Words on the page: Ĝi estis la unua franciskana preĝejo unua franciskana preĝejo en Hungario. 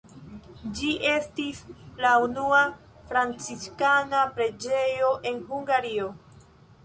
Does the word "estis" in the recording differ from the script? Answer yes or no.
no